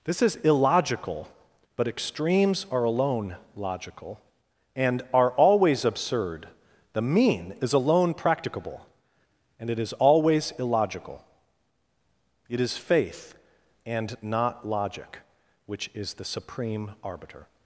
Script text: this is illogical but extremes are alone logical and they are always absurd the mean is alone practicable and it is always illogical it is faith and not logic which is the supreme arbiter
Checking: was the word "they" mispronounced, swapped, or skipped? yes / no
yes